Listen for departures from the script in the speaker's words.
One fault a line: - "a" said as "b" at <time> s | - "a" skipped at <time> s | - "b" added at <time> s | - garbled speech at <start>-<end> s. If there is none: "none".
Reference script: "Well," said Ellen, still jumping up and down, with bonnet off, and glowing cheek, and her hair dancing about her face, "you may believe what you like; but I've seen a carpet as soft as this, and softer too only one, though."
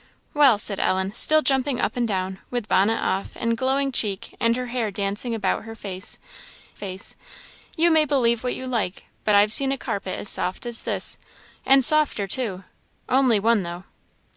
- "face" added at 6.7 s